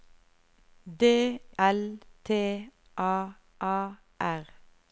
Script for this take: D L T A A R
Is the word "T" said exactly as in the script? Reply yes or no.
yes